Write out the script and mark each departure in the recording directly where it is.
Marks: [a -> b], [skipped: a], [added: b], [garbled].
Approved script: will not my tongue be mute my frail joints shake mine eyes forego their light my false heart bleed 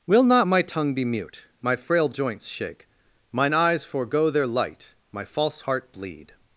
will not my tongue be mute my frail joints shake mine eyes forego their light my false heart bleed